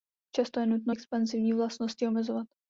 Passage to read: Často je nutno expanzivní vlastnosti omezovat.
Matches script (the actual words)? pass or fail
pass